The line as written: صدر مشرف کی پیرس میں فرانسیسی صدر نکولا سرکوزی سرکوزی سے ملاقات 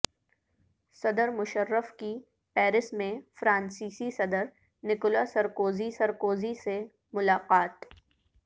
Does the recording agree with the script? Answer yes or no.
yes